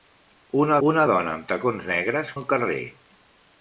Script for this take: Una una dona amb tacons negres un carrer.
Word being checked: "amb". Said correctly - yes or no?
yes